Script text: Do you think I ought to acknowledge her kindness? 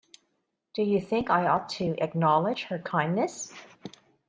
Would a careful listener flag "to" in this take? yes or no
no